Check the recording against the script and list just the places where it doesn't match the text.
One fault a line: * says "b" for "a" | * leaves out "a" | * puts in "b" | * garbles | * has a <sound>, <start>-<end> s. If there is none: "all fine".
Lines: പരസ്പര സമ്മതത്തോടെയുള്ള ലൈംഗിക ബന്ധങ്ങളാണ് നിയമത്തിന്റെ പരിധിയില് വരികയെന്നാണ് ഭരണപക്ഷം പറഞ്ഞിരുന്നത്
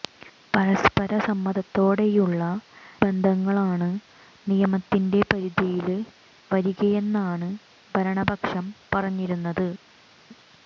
* leaves out "ലൈംഗിക"